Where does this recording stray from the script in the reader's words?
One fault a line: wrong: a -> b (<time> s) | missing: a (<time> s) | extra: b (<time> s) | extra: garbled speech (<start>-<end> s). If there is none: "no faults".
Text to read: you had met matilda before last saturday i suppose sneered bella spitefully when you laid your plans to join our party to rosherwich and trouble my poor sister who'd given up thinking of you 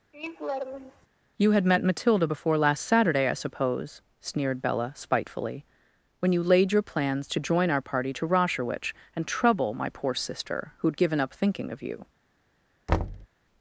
no faults